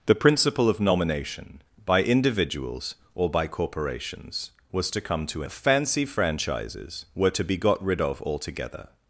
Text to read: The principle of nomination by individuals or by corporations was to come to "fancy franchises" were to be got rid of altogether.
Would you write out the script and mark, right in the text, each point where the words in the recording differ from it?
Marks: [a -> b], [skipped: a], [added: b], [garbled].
The principle of nomination by individuals or by corporations was to come to "fancy franchises" were to be got rid of altogether.